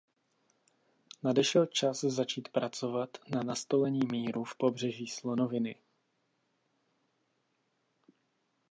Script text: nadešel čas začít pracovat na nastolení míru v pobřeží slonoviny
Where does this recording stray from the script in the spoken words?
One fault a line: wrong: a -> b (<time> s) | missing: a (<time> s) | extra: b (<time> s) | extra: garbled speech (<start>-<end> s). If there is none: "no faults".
no faults